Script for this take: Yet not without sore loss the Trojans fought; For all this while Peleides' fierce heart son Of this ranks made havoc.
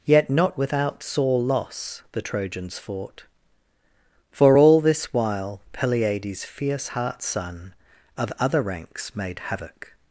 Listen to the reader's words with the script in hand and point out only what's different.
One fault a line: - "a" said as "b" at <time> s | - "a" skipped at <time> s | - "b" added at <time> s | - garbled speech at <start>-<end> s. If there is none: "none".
- "this" said as "other" at 8.4 s